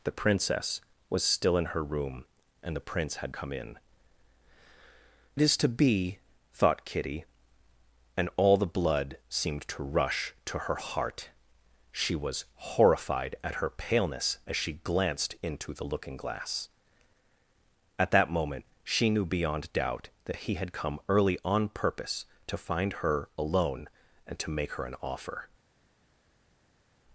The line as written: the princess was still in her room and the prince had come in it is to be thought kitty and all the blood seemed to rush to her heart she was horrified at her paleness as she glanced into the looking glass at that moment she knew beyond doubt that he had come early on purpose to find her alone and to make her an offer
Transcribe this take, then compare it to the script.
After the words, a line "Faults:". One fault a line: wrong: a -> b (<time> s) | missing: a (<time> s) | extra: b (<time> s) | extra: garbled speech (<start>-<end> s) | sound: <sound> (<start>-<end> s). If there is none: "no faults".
the princess was still in her room and the prince had come in it is to be thought kitty and all the blood seemed to rush to her heart she was horrified at her paleness as she glanced into the looking glass at that moment she knew beyond doubt that he had come early on purpose to find her alone and to make her an offer
Faults:
no faults